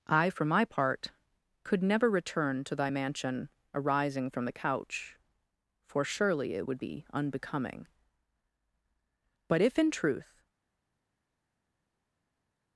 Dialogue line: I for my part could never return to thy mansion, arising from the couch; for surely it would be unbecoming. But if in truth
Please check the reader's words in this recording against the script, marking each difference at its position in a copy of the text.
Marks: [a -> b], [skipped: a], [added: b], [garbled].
I for my part could never return to thy mansion, arising from the couch; for surely it would be unbecoming. But if in truth